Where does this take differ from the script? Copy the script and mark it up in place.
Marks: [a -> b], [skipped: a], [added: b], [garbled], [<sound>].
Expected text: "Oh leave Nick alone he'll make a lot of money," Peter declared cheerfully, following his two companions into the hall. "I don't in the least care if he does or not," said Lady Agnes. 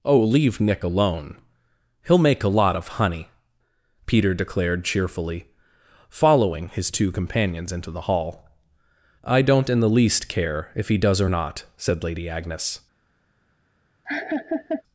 "Oh leave Nick alone he'll make a lot of [money," -> honey] Peter declared cheerfully, following his two companions into the hall. "I don't in the least care if he does or not," said Lady Agnes. [laugh]